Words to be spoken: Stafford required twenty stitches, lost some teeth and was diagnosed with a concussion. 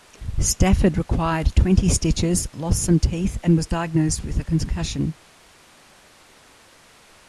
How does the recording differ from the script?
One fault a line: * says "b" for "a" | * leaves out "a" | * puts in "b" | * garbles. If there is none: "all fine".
all fine